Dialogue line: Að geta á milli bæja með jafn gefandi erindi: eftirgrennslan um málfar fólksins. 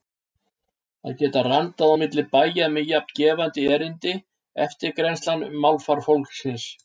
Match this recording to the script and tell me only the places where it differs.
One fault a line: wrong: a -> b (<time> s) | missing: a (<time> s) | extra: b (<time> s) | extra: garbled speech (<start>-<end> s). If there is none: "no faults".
extra: randað (1.5 s)